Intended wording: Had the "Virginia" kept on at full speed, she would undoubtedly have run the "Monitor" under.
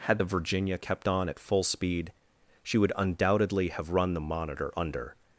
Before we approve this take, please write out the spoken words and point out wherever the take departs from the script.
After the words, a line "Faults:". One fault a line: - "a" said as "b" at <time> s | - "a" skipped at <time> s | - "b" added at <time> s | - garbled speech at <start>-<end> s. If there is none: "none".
Had the "Virginia" kept on at full speed, she would undoubtedly have run the "Monitor" under.
Faults:
none